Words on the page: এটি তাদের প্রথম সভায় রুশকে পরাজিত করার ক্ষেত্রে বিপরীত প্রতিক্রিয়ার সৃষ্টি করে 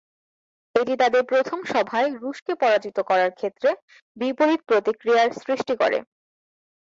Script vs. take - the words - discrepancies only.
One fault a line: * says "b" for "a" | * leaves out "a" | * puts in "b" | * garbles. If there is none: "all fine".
all fine